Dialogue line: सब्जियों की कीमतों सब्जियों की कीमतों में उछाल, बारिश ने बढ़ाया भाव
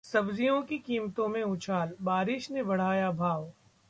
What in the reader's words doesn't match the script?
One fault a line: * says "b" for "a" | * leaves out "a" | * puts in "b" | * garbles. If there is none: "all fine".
* leaves out "सब्जियों की कीमतों"